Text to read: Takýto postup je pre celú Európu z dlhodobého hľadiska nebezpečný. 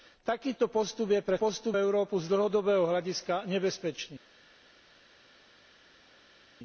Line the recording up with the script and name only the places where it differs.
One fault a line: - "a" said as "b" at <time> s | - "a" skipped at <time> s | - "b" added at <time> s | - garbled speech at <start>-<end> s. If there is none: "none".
- "celú" said as "postup" at 1.4 s